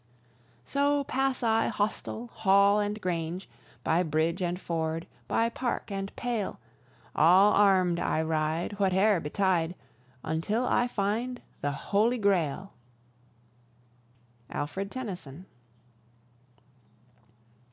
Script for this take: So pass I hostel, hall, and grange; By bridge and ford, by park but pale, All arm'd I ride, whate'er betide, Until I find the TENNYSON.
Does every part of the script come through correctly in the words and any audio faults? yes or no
no